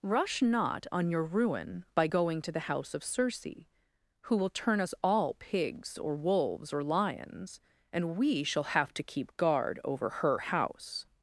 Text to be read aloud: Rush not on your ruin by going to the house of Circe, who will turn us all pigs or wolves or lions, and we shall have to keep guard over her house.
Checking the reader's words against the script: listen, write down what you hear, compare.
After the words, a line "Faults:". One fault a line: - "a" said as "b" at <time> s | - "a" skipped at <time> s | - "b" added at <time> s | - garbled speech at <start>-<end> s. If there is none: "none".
Rush not on your ruin by going to the house of Circe, who will turn us all pigs or wolves or lions, and we shall have to keep guard over her house.
Faults:
none